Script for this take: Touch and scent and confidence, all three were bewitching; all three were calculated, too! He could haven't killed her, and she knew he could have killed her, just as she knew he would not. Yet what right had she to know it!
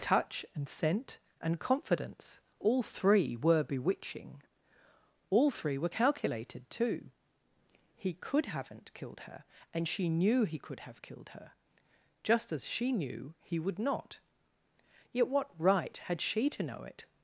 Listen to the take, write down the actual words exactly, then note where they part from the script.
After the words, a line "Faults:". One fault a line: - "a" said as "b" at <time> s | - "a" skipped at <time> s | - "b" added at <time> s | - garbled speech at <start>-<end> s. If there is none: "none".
Touch and scent and confidence, all three were bewitching; all three were calculated, too! He could haven't killed her, and she knew he could have killed her, just as she knew he would not. Yet what right had she to know it!
Faults:
none